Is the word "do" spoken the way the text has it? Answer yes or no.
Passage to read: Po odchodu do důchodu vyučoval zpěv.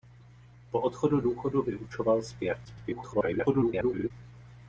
no